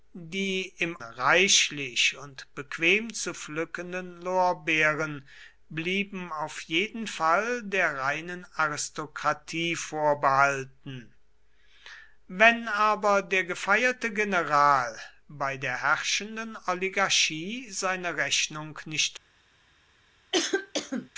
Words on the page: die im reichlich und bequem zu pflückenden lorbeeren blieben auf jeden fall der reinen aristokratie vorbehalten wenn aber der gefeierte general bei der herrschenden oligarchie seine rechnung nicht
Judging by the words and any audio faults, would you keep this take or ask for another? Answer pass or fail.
fail